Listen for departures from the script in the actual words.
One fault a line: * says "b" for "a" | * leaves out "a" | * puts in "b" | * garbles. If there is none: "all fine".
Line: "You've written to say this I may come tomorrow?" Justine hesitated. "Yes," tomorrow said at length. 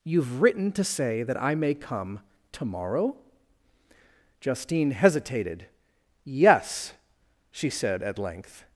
* says "that" for "this"
* says "she" for "tomorrow"